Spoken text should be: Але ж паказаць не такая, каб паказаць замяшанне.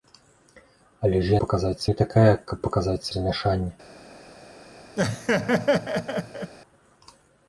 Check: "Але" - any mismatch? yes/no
no